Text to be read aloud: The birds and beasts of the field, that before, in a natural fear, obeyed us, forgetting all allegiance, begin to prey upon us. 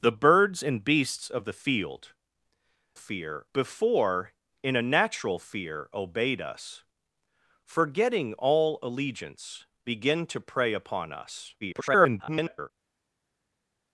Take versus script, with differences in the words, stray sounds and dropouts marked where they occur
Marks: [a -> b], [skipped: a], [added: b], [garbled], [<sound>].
The birds and beasts of the field, [that -> fear] before, in a natural fear, obeyed us, forgetting all allegiance, begin to prey upon us. [garbled]